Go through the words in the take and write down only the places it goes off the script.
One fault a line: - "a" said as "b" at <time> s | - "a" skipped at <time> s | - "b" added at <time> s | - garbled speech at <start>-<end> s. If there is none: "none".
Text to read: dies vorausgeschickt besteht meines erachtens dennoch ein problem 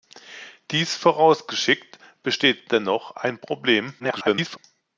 - "meines erachtens" skipped at 2.7 s
- garbled speech at 4.0-4.6 s